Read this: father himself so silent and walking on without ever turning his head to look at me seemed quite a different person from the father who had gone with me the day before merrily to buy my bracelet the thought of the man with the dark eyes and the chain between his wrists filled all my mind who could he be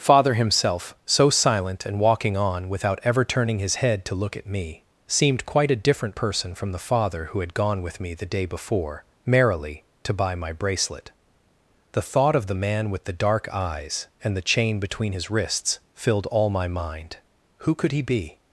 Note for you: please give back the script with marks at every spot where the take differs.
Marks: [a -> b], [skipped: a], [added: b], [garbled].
father himself so silent and walking on without ever turning his head to look at me seemed quite a different person from the father who had gone with me the day before merrily to buy my bracelet the thought of the man with the dark eyes and the chain between his wrists filled all my mind who could he be